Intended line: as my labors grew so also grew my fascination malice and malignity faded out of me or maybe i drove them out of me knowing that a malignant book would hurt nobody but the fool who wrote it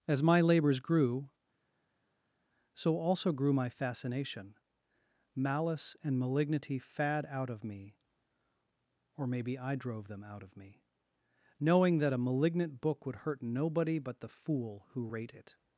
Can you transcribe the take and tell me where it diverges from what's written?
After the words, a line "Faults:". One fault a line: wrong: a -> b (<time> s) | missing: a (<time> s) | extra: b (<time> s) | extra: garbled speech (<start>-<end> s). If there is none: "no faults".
as my labors grew so also grew my fascination malice and malignity fad out of me or maybe i drove them out of me knowing that a malignant book would hurt nobody but the fool who rate it
Faults:
wrong: faded -> fad (6.8 s)
wrong: wrote -> rate (15.0 s)